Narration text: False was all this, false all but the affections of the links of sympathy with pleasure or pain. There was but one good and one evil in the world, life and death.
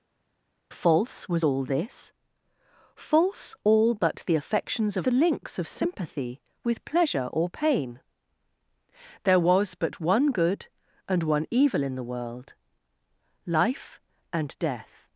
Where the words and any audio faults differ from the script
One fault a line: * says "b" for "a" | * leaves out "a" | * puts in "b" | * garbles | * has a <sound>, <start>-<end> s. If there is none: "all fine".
all fine